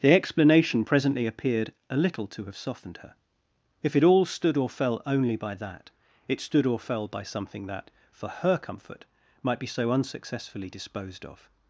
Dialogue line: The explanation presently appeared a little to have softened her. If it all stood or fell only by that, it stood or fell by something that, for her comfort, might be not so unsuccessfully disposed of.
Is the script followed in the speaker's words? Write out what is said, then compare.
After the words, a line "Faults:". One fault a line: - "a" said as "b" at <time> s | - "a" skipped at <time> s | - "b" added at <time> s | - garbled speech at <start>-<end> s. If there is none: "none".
The explanation presently appeared a little to have softened her. If it all stood or fell only by that, it stood or fell by something that, for her comfort, might be so unsuccessfully disposed of.
Faults:
- "not" skipped at 9.7 s